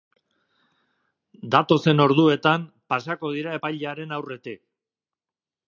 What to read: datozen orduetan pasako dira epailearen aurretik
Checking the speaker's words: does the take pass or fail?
pass